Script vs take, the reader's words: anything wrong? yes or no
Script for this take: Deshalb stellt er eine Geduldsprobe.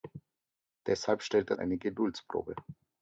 no